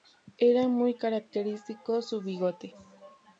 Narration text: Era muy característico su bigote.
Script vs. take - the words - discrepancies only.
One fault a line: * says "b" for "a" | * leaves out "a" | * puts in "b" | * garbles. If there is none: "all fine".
all fine